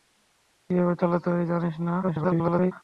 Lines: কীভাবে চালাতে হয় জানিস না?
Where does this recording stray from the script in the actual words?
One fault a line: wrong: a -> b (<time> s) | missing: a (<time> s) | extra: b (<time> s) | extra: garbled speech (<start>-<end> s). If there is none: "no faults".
extra: garbled speech (2.0-2.7 s)